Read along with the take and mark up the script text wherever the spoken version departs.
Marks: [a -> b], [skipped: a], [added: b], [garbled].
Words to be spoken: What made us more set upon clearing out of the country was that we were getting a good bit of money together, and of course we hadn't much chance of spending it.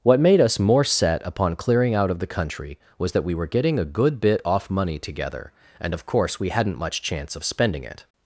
What made us more set upon clearing out of the country was that we were getting a good bit [of -> off] money together, and of course we hadn't much chance of spending it.